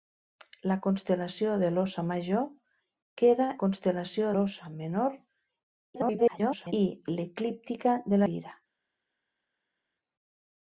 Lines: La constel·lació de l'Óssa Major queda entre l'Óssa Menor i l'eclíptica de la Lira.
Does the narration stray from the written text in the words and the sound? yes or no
yes